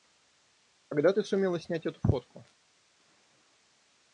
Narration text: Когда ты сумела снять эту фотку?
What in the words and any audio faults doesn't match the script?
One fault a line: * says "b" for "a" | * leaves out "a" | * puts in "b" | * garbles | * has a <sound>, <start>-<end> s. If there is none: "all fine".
all fine